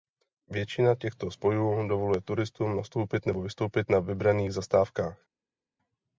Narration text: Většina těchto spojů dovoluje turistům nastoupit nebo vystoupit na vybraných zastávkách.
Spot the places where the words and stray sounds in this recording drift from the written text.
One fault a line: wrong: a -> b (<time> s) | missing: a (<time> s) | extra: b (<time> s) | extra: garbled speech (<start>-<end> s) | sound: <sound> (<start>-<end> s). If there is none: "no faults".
no faults